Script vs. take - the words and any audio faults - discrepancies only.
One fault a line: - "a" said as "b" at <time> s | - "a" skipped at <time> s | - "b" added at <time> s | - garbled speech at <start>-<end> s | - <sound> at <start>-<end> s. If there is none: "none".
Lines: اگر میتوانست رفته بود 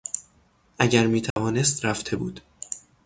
- dropout at 1.3-1.4 s